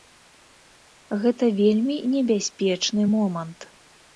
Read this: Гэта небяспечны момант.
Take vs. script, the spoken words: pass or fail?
fail